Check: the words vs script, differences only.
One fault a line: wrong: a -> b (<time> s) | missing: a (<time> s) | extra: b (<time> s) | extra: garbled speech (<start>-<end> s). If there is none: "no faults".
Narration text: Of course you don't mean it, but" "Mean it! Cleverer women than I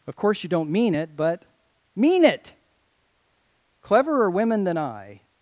no faults